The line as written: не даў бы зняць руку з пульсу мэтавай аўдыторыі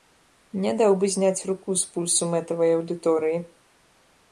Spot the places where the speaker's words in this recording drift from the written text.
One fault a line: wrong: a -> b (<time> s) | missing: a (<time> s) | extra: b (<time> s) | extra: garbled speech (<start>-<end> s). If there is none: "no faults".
no faults